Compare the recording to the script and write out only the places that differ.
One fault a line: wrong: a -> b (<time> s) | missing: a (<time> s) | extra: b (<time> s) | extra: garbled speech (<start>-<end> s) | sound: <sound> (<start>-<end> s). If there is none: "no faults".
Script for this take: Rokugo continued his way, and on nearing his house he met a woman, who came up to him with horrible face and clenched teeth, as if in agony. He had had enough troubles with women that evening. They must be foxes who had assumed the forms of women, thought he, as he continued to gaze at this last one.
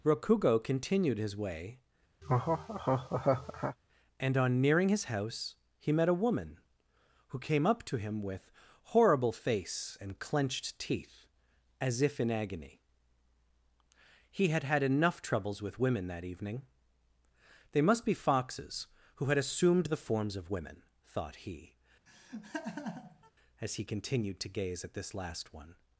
sound: laugh (2.2-3.8 s)
sound: laugh (22.1-23.3 s)